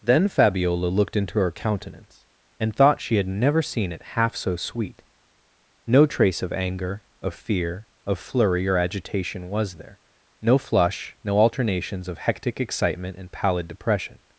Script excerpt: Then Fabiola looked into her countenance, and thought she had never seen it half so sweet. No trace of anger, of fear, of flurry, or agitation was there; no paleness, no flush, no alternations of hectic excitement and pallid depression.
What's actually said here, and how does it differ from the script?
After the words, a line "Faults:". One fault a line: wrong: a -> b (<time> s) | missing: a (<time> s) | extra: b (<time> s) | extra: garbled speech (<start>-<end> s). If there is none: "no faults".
Then Fabiola looked into her countenance, and thought she had never seen it half so sweet. No trace of anger, of fear, of flurry, or agitation was there; no flush, no alternations of hectic excitement and pallid depression.
Faults:
missing: paleness no (10.6 s)